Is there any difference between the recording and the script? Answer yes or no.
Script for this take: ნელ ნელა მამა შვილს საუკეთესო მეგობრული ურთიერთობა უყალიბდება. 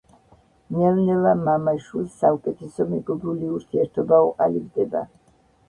no